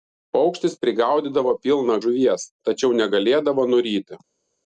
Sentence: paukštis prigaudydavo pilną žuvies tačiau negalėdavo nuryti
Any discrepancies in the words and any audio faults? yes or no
no